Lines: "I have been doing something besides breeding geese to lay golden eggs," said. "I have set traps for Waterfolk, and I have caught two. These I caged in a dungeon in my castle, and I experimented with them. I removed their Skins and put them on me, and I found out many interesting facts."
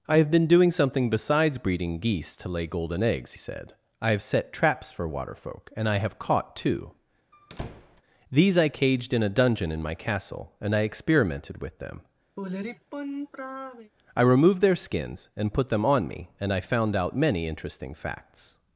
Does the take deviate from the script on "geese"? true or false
false